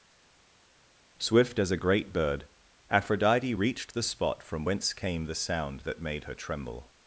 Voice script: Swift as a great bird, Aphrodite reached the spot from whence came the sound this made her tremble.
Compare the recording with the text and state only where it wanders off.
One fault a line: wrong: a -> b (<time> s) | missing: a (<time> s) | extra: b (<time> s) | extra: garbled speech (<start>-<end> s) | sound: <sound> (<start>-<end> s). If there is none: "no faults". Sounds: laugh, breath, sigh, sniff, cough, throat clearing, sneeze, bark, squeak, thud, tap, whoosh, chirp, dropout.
wrong: this -> that (5.8 s)